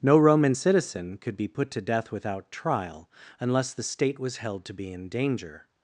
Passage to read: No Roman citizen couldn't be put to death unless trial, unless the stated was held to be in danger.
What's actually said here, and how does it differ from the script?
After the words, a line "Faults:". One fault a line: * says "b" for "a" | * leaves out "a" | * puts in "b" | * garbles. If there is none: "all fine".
No Roman citizen could be put to death without trial, unless the state was held to be in danger.
Faults:
* says "could" for "couldn't"
* says "without" for "unless"
* says "state" for "stated"